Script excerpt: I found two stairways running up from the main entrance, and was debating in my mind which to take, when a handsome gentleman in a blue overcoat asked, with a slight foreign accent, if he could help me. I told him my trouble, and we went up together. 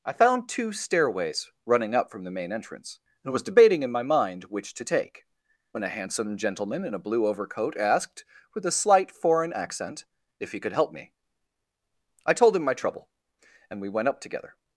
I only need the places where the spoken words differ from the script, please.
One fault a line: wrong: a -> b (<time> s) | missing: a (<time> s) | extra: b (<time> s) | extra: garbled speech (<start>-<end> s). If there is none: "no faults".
no faults